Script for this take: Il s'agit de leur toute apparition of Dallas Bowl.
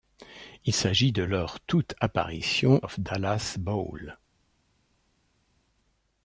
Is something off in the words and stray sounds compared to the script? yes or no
no